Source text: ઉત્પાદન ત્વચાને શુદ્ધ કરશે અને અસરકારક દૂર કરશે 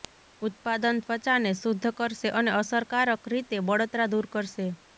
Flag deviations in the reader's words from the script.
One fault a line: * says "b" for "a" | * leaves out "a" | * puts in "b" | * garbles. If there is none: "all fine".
* puts in "રીતે બળતરા"